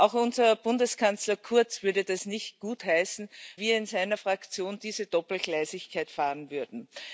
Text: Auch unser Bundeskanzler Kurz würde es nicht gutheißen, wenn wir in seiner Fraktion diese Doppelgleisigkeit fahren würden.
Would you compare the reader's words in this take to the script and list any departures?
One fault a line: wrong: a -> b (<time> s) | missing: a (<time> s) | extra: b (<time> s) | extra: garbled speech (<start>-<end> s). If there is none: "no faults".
missing: wenn (3.3 s)